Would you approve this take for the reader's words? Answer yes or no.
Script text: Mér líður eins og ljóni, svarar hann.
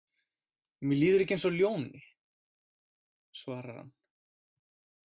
no